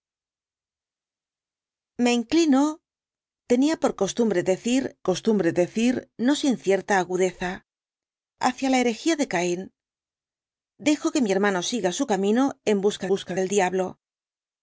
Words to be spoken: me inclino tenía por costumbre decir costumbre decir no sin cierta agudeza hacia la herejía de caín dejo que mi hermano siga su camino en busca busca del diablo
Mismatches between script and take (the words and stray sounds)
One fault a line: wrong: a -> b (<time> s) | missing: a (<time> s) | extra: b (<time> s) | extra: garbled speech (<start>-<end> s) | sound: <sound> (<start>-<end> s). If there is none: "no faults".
no faults